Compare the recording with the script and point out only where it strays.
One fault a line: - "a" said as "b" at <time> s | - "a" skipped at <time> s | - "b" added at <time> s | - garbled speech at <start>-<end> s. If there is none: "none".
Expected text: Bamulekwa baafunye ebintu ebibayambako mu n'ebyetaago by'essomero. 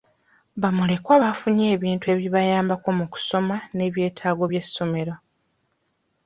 - "kusoma" added at 3.1 s